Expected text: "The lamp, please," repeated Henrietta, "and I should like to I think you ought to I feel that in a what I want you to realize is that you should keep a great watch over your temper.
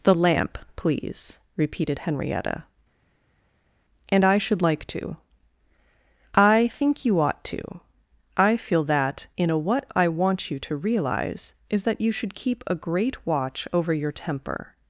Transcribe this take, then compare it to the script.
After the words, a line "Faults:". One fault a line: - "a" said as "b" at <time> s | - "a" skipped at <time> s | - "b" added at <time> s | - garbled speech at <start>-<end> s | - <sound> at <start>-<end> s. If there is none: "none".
"The lamp, please," repeated Henrietta, "and I should like to I think you ought to I feel that in a what I want you to realize is that you should keep a great watch over your temper.
Faults:
none